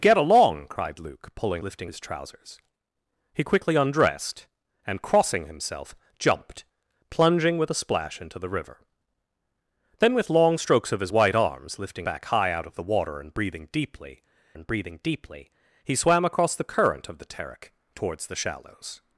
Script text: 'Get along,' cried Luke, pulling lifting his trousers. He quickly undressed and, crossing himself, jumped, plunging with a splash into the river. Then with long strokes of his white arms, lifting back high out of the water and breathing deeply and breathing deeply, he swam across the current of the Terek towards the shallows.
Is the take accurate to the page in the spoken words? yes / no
yes